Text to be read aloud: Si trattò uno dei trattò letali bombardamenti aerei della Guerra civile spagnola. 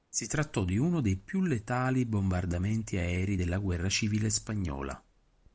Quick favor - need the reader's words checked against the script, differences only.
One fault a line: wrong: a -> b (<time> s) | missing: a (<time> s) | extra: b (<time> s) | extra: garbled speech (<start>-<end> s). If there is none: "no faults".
extra: di (0.7 s)
wrong: trattò -> più (1.1 s)